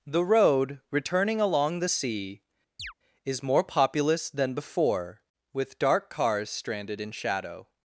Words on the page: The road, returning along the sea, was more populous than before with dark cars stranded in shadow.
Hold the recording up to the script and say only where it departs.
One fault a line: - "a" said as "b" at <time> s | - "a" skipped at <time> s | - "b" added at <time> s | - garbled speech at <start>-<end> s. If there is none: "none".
- "was" said as "is" at 3.2 s